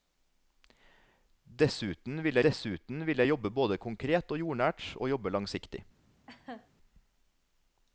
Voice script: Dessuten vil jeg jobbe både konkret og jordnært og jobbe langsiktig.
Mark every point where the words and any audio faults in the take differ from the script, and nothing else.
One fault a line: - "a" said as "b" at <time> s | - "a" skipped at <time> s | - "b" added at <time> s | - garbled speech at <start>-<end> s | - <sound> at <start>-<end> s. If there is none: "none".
- "dessuten vil" added at 2.4 s
- laugh at 6.3-6.7 s